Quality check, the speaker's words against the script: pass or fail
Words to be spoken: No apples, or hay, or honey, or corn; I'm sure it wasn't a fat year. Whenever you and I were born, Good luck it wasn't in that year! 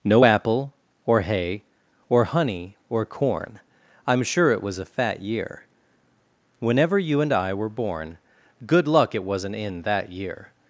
fail